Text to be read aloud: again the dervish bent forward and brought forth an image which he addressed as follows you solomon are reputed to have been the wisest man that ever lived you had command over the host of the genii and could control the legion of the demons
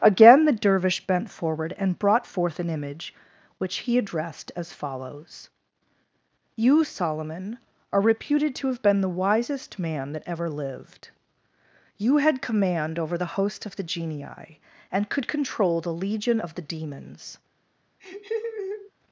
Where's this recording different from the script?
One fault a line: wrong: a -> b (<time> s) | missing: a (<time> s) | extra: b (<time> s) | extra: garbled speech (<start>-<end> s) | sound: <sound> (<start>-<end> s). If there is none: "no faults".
sound: laugh (18.0-18.9 s)